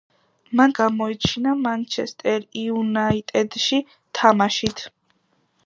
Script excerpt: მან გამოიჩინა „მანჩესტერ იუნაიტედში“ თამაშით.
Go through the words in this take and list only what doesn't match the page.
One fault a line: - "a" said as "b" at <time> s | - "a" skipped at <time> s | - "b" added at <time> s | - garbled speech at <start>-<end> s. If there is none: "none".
none